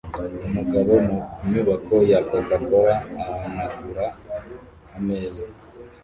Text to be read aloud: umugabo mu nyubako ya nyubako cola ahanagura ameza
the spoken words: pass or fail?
fail